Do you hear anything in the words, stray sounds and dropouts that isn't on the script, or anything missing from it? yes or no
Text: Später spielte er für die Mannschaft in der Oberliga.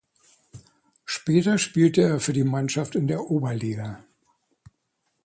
no